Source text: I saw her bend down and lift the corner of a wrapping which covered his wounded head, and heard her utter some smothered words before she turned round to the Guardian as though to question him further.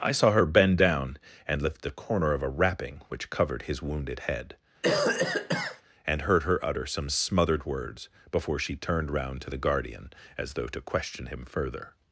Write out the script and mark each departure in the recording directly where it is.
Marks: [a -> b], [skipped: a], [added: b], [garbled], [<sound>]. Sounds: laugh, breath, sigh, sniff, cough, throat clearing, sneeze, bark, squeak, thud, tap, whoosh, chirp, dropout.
I saw her bend down and lift the corner of a wrapping which covered his wounded head, [cough] and heard her utter some smothered words before she turned round to the Guardian as though to question him further.